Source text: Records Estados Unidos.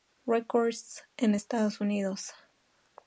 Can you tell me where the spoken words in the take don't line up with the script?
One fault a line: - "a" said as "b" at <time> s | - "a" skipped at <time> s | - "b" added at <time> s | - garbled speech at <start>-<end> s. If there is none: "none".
- "en" added at 1.2 s